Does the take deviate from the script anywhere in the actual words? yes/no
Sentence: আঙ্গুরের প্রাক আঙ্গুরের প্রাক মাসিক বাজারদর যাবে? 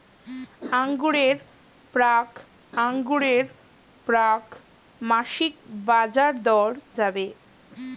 no